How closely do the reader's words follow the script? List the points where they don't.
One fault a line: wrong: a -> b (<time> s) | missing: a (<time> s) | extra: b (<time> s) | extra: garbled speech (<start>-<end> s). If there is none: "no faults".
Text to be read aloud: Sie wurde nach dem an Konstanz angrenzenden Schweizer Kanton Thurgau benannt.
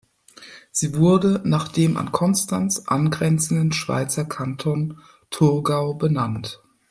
no faults